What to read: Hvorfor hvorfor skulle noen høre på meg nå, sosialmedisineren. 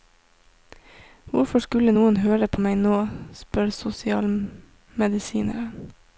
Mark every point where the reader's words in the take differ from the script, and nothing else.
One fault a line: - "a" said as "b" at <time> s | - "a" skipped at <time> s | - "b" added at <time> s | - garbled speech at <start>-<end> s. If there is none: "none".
- "hvorfor" skipped at 1.6 s
- "spør" added at 3.3 s